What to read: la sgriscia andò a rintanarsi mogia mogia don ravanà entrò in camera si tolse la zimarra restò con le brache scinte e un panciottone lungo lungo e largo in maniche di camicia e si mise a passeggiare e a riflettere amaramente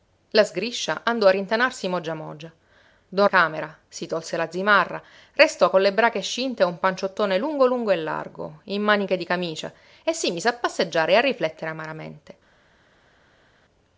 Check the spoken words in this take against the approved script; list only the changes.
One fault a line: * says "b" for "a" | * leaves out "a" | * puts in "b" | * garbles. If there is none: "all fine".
* leaves out "ravanà entrò in"